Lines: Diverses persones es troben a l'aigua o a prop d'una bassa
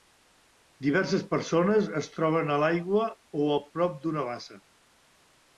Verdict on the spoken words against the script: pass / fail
pass